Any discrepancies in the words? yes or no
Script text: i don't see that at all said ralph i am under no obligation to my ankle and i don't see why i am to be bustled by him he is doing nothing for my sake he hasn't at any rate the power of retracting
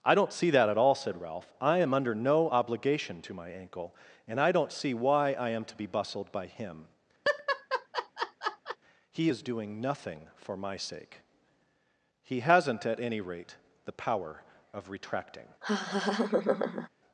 no